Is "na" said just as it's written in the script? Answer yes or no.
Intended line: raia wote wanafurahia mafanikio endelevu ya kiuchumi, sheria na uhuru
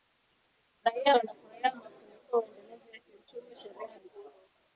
no